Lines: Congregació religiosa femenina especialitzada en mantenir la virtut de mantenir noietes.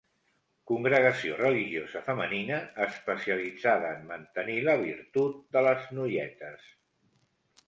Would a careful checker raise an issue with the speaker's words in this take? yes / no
yes